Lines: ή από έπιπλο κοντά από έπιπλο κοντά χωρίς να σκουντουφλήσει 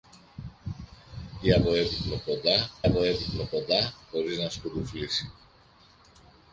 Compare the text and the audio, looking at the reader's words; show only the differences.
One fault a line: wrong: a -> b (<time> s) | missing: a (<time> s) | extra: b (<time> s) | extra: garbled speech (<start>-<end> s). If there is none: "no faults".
no faults